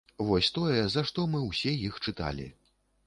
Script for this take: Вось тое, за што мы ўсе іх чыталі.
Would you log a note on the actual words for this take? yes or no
no